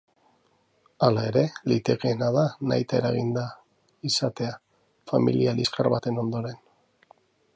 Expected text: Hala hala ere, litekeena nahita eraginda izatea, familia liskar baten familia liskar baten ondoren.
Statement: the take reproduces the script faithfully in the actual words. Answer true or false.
false